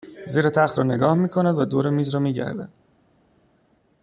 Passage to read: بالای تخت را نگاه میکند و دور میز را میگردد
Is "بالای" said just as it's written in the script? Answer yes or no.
no